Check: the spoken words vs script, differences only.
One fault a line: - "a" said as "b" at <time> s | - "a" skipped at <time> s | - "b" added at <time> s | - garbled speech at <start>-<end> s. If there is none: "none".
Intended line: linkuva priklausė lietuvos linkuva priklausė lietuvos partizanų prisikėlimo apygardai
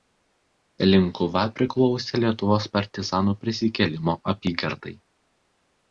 - "linkuva priklausė lietuvos" skipped at 2.7 s